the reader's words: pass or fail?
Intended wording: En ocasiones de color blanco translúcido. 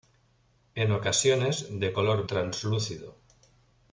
fail